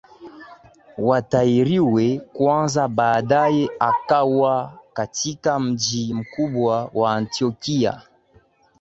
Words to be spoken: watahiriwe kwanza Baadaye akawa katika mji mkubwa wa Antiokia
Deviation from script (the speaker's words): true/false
false